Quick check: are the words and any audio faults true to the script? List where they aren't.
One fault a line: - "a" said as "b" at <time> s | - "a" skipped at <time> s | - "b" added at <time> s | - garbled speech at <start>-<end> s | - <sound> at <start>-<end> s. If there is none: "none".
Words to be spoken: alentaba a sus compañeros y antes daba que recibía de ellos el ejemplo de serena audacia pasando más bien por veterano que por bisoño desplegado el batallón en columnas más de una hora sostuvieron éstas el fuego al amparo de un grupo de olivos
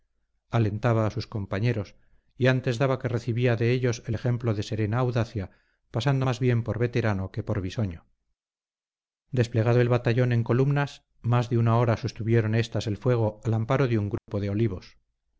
- dropout at 14.2-14.3 s